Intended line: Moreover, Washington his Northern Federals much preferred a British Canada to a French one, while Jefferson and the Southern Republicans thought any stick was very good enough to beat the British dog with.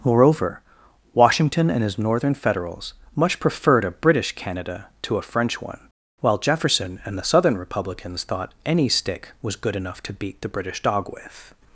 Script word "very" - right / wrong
wrong